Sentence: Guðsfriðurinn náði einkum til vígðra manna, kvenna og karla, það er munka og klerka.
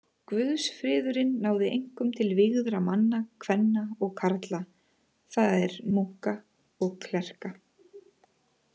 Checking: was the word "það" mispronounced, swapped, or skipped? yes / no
no